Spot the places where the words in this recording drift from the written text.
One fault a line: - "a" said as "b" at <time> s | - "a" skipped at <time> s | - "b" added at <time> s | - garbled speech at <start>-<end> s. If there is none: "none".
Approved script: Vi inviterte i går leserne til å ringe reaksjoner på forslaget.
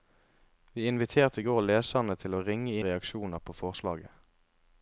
none